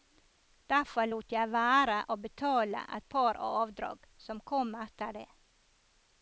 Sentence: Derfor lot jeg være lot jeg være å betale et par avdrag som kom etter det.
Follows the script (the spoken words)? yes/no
no